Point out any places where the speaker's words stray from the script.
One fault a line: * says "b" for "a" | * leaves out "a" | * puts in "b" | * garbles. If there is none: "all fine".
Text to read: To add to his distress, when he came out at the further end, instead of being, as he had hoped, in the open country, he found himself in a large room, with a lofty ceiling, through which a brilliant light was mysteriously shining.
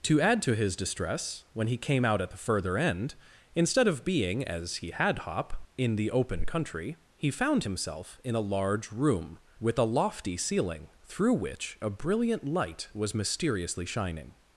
* says "hop" for "hoped"